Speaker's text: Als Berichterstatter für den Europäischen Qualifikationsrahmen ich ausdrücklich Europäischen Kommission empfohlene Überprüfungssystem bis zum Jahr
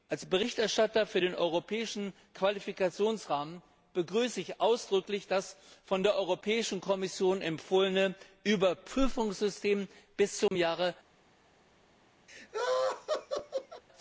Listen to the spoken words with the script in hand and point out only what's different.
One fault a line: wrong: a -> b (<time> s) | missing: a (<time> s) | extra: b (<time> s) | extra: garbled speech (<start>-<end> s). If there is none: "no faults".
extra: begrüße (3.9 s)
extra: das von der (5.3 s)